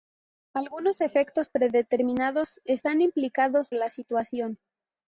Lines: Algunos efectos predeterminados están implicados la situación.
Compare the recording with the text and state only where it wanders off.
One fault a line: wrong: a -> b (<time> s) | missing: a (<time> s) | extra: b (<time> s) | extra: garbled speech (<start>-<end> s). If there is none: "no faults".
no faults